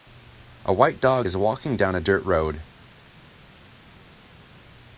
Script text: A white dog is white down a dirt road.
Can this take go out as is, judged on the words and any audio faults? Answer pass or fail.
fail